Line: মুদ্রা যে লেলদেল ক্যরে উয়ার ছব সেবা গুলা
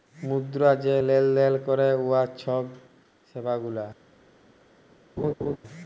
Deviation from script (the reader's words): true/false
false